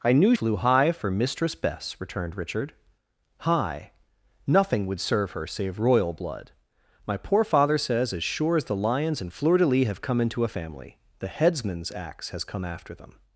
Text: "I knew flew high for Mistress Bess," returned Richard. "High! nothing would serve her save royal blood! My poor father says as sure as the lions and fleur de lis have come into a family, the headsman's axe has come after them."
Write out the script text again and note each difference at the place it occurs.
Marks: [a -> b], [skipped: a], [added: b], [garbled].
"I knew flew high for Mistress Bess," returned Richard. "High! nothing would serve her save royal blood! My poor father says as sure as the lions and fleur de lis have come into a family, the headsman's axe has come after them."